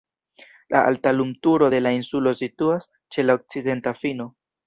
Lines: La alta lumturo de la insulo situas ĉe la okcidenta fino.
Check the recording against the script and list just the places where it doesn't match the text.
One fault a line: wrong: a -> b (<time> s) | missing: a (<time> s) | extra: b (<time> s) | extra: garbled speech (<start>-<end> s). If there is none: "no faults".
no faults